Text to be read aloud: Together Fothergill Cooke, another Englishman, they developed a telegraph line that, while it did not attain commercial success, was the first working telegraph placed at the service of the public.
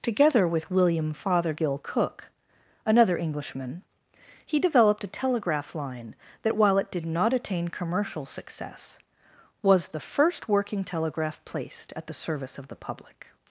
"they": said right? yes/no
no